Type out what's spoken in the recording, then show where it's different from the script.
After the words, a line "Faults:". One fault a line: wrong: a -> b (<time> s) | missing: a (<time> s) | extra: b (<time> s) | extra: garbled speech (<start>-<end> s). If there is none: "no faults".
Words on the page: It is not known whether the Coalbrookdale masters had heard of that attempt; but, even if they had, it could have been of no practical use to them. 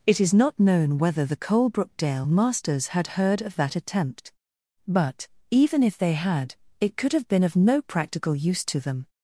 It is not known whether the Coalbrookdale masters had heard of that attempt; but, even if they had, it could have been of no practical use to them.
Faults:
no faults